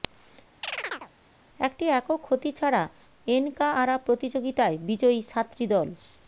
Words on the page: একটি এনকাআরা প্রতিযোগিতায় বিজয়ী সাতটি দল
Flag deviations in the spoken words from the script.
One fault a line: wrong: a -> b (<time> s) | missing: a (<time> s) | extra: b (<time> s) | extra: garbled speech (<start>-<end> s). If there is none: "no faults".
extra: একক ক্ষতি ছাড়া (1.9 s)